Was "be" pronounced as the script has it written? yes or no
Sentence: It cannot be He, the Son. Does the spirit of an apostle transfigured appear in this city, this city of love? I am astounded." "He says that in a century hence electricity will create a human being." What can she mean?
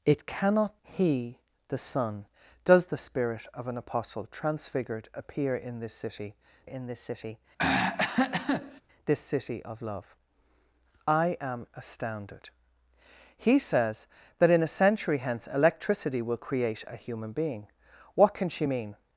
no